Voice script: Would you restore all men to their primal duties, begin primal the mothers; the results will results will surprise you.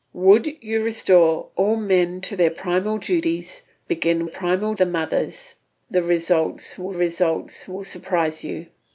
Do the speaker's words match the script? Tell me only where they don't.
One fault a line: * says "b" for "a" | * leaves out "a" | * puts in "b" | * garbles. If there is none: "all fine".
all fine